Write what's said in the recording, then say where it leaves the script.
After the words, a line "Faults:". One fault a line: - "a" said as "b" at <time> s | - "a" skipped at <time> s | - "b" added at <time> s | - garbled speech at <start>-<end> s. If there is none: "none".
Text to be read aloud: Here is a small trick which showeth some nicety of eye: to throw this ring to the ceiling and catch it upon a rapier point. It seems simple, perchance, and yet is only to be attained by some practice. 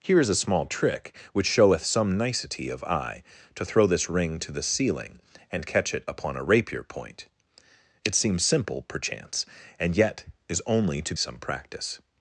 Here is a small trick which showeth some nicety of eye: to throw this ring to the ceiling and catch it upon a rapier point. It seems simple, perchance, and yet is only to some practice.
Faults:
- "be attained by" skipped at 11.1 s